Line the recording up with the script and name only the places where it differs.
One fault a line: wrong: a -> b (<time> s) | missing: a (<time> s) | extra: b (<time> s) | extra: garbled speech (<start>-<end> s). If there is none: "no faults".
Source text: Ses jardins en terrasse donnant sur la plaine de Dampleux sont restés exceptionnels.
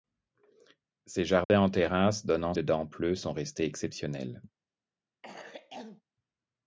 missing: sur la plaine (2.5 s)